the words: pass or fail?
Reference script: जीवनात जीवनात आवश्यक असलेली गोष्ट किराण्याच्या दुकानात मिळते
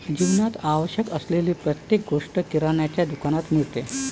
fail